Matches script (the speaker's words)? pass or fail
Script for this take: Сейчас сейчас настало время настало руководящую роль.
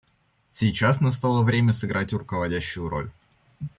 fail